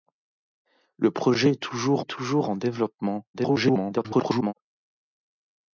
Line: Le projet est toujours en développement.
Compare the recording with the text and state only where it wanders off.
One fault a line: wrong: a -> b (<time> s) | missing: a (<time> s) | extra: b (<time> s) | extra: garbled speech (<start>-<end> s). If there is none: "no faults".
extra: est toujours (2.0 s)
extra: garbled speech (3.3-4.5 s)